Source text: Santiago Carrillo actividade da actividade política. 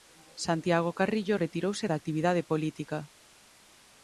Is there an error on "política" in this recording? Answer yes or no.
no